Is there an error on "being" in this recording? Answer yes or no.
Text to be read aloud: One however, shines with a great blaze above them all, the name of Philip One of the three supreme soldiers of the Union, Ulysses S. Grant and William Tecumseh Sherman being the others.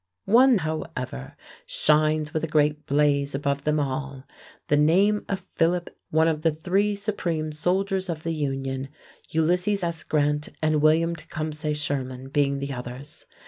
no